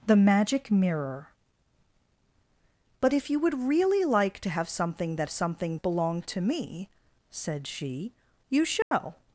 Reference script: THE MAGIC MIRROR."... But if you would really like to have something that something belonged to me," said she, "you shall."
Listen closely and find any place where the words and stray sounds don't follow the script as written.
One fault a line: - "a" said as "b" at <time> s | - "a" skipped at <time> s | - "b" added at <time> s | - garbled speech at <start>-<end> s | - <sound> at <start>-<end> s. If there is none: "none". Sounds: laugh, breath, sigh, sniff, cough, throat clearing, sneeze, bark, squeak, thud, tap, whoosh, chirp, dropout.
- dropout at 8.8-8.9 s